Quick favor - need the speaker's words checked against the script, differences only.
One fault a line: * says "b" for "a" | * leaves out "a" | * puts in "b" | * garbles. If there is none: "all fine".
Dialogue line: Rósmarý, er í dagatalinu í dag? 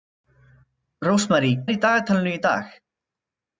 all fine